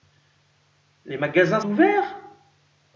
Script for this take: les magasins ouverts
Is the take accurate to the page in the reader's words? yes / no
yes